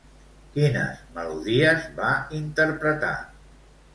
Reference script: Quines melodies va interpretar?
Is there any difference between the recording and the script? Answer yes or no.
no